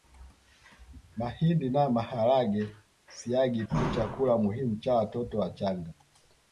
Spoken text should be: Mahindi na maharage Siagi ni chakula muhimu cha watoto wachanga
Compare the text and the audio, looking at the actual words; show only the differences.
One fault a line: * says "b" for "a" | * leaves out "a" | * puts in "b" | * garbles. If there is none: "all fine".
all fine